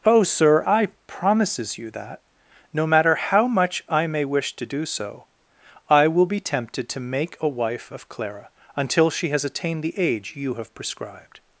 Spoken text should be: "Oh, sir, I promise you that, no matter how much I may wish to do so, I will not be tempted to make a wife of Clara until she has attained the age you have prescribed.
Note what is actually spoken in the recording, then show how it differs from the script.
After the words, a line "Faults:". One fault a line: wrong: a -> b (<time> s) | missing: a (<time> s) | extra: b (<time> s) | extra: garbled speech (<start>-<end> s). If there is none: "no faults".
"Oh, sir, I promises you that, no matter how much I may wish to do so, I will be tempted to make a wife of Clara until she has attained the age you have prescribed.
Faults:
wrong: promise -> promises (1.1 s)
missing: not (6.2 s)